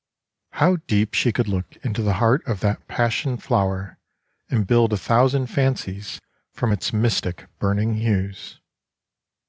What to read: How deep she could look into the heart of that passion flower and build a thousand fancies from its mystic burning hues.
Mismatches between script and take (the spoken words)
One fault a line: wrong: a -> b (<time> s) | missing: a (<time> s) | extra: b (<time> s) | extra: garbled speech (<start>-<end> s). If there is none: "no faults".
no faults